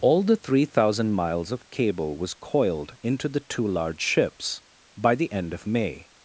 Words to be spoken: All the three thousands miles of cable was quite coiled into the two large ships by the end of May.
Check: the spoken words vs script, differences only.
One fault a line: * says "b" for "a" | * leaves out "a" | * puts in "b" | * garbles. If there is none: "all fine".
* says "thousand" for "thousands"
* leaves out "quite"